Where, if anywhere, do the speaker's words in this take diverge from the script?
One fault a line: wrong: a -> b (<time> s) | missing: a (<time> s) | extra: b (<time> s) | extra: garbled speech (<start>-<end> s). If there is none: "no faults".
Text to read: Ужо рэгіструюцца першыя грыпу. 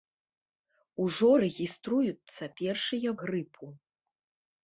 no faults